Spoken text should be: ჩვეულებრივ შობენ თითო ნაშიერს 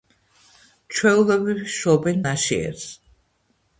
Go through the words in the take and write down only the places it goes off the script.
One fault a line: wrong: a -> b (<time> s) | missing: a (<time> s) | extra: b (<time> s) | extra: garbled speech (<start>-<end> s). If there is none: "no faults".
missing: თითო (2.2 s)